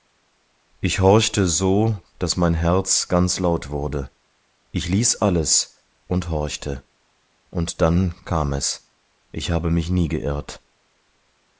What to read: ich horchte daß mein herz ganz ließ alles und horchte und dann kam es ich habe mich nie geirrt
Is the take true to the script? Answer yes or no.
no